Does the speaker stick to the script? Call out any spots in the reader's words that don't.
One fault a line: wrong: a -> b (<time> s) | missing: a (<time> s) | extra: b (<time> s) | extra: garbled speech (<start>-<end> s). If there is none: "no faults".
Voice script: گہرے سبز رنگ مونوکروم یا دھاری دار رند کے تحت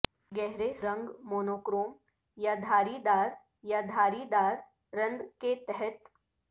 missing: سبز (0.7 s)
extra: یا دھاری دار (3.6 s)